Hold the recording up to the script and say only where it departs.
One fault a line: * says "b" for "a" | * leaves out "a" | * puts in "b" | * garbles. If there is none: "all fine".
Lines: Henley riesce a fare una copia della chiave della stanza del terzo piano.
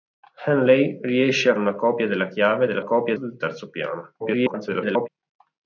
* leaves out "fare"
* says "copia" for "stanza"
* garbles